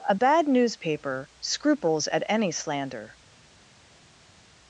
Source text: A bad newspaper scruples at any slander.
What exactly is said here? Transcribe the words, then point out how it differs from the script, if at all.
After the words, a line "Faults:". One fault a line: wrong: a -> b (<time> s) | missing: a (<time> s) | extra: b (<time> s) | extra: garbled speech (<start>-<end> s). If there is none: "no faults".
A bad newspaper scruples at any slander.
Faults:
no faults